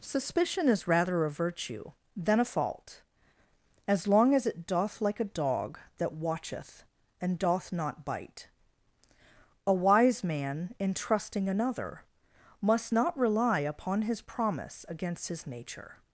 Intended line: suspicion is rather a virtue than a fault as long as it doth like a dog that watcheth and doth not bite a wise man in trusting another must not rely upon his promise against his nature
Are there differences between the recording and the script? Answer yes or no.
no